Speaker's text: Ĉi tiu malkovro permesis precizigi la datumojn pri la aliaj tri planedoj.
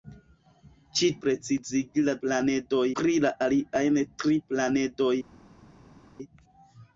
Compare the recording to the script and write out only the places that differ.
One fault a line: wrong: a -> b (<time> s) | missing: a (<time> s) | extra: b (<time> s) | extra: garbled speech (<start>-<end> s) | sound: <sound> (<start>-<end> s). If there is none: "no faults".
missing: tiu malkovro permesis (1.1 s)
wrong: datumojn -> planedoj (2.3 s)